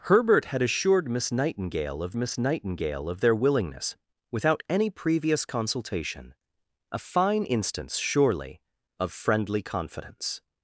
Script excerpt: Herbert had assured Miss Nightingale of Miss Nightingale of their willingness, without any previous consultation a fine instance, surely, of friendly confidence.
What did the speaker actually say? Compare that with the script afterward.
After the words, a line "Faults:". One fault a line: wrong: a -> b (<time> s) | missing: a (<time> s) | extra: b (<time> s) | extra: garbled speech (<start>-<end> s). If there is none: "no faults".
Herbert had assured Miss Nightingale of Miss Nightingale of their willingness, without any previous consultation a fine instance, surely, of friendly confidence.
Faults:
no faults